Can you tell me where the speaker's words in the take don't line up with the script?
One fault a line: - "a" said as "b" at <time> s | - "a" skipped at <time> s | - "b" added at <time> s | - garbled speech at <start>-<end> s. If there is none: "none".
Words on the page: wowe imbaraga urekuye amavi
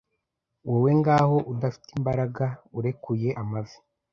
- "ngaho udafite" added at 1.0 s